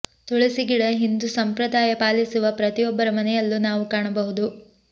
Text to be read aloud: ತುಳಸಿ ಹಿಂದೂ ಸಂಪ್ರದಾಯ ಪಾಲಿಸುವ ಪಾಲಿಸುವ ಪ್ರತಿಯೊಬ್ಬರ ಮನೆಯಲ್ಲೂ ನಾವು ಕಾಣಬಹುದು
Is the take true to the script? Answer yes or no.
no